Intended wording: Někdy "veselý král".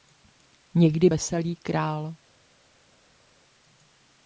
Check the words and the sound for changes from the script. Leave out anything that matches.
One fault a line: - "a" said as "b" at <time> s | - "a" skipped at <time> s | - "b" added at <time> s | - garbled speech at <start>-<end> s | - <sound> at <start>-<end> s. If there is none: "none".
none